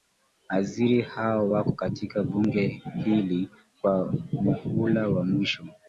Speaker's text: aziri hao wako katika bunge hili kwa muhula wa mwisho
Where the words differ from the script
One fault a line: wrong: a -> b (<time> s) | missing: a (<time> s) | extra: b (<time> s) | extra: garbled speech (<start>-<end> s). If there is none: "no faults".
no faults